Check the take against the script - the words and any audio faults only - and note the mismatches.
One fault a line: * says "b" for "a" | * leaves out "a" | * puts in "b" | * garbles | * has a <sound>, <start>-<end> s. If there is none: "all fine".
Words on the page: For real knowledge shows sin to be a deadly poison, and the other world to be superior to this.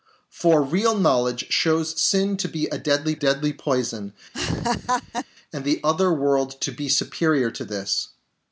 * puts in "deadly"
* has a laugh, 4.3-5.3 s